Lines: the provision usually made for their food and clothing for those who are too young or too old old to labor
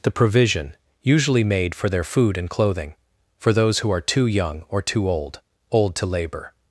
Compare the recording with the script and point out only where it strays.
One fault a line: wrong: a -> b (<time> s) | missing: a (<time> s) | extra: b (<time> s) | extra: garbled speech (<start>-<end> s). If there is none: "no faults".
no faults